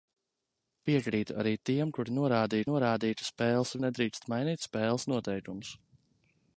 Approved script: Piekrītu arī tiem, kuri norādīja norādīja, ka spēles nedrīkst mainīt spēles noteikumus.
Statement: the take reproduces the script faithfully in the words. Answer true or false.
true